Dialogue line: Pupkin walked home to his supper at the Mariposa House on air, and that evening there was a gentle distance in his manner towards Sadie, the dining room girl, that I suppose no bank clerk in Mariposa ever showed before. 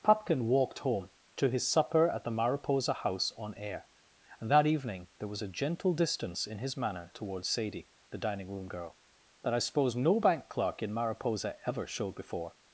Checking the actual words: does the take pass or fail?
pass